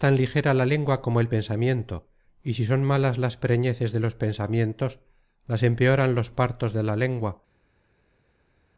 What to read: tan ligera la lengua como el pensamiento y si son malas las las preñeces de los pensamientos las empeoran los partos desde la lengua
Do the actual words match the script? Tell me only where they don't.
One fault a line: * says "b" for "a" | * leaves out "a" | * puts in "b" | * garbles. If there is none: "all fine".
* leaves out "las"
* says "de" for "desde"